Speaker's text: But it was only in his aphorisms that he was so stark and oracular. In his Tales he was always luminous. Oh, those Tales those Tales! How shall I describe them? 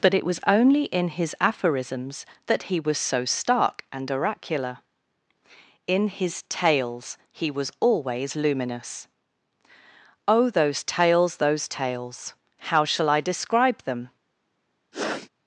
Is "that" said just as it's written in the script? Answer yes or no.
yes